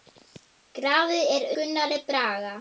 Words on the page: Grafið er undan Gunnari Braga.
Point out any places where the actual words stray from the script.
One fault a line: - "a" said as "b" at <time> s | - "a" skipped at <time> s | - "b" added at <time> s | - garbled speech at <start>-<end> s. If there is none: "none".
- "undan" skipped at 1.5 s